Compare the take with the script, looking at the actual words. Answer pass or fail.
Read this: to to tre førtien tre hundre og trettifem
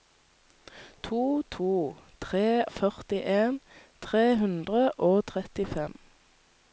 pass